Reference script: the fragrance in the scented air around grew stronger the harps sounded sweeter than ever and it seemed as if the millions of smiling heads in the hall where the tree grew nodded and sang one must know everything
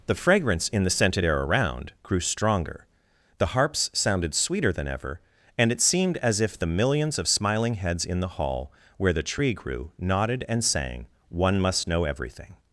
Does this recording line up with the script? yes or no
yes